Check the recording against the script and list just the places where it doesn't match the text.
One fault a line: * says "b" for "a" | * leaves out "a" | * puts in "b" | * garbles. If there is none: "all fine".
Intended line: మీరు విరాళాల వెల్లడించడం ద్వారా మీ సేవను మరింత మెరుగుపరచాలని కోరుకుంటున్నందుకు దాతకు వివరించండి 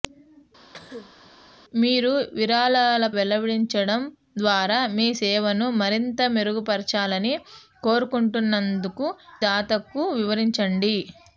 all fine